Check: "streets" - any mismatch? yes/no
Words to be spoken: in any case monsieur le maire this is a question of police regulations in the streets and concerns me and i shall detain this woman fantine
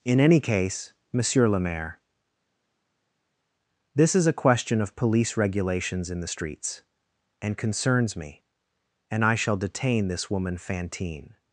no